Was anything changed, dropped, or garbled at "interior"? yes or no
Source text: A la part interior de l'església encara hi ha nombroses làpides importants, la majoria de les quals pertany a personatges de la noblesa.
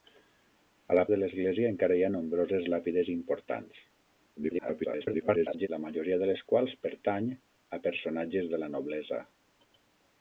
yes